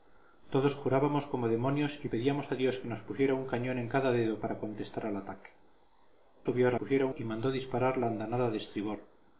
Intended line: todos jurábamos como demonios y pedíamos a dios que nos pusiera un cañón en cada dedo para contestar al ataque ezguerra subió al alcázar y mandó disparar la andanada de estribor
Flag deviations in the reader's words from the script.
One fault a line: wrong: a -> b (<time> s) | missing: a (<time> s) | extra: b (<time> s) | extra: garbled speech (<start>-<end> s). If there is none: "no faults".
missing: ezguerra (5.5 s)
wrong: alcázar -> pusiera (6.8 s)